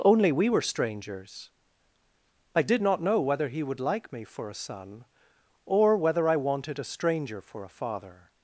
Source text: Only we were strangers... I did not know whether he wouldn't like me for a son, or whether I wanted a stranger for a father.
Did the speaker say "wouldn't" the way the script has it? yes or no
no